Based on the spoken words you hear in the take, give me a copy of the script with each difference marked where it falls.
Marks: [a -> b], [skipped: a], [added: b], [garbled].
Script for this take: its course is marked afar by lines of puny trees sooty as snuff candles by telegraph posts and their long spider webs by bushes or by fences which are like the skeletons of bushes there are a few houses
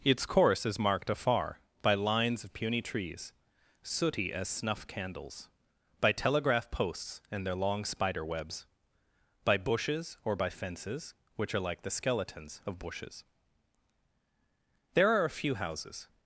its course is marked afar by lines of puny trees sooty as snuff candles by telegraph posts and their long spider webs by bushes or by fences which are like the skeletons of bushes there are a few houses